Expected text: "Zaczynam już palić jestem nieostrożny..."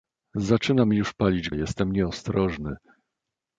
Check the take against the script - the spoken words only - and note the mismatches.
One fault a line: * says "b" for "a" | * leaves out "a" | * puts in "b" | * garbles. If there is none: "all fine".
all fine